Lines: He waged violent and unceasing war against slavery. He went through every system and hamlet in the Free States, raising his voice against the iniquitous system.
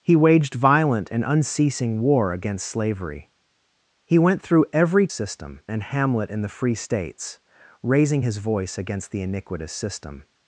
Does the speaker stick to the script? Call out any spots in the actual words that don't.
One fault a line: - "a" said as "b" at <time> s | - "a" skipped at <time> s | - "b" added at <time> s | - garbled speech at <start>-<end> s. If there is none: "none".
none